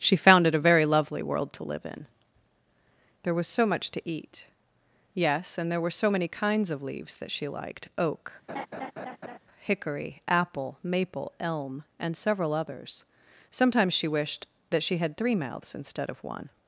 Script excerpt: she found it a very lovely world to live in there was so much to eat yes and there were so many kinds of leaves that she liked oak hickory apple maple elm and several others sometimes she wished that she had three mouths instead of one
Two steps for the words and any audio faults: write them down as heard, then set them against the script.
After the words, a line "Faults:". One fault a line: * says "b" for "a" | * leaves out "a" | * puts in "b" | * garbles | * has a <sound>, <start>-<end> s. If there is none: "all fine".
she found it a very lovely world to live in there was so much to eat yes and there were so many kinds of leaves that she liked oak hickory apple maple elm and several others sometimes she wished that she had three mouths instead of one
Faults:
* has a laugh, 8.5-9.4 s